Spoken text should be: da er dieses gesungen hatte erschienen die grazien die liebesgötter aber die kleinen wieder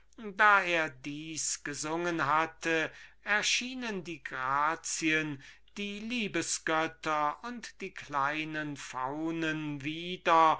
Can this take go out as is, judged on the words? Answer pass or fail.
fail